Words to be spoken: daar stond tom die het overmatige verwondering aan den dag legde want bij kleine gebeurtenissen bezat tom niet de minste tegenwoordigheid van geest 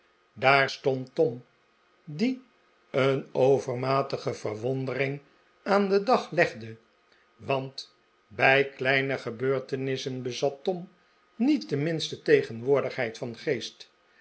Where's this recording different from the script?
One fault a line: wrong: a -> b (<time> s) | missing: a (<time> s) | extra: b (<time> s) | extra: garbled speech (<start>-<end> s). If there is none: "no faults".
wrong: het -> een (2.9 s)